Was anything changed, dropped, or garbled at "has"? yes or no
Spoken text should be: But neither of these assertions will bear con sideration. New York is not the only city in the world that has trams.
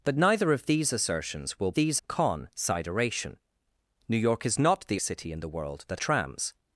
yes